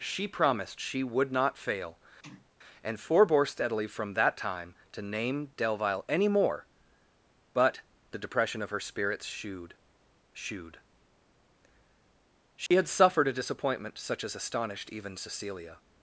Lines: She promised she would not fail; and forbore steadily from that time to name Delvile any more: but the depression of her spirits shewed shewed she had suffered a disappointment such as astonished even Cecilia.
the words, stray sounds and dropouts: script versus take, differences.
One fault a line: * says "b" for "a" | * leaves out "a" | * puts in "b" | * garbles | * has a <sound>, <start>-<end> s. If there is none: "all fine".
* has a sneeze, 2.2-2.5 s
* has a dropout, 12.7-12.7 s